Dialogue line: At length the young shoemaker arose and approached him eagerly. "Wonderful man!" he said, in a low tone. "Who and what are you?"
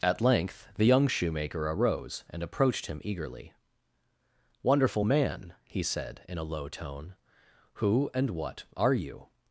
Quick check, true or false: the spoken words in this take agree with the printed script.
true